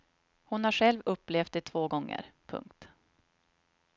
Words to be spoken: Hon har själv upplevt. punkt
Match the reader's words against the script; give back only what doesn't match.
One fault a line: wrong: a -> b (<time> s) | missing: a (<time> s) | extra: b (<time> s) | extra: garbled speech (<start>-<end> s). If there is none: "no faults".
extra: det två gånger (1.5 s)